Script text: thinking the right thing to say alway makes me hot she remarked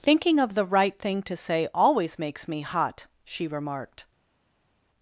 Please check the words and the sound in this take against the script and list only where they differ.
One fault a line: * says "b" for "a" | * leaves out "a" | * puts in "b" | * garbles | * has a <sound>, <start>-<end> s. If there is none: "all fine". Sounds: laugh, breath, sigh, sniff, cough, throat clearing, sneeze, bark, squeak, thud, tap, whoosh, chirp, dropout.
* puts in "of"
* says "always" for "alway"